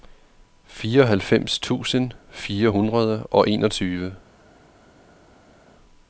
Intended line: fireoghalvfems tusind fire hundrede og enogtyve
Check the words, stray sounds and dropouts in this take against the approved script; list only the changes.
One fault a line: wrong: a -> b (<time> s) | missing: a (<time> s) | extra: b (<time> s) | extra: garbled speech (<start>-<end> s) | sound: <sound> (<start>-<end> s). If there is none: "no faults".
no faults